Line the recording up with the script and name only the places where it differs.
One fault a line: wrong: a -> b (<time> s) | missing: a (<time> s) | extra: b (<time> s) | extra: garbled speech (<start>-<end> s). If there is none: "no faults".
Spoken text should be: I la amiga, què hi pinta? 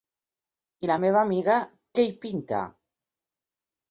extra: meva (1.0 s)